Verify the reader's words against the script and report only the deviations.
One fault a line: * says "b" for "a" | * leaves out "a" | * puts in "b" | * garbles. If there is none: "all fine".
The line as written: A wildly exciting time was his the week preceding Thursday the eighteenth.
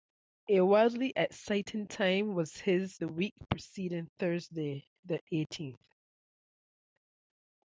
all fine